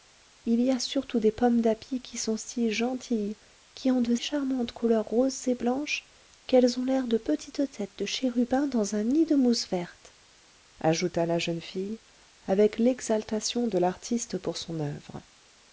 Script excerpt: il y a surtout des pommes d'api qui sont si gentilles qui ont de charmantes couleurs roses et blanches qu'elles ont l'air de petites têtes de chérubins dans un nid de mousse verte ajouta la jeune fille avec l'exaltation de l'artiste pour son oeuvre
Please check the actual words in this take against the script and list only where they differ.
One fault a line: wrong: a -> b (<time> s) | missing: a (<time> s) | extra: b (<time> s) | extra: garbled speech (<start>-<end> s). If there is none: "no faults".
no faults